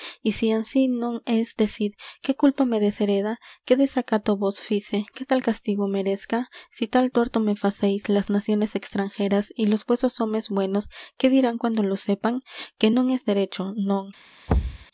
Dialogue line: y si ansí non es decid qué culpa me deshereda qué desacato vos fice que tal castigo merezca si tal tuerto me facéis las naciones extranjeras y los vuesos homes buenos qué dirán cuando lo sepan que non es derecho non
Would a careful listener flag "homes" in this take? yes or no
no